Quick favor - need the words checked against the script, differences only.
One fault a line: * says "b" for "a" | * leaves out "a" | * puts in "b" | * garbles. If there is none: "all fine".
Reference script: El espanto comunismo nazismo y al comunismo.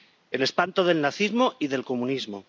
* says "del" for "comunismo"
* says "del" for "al"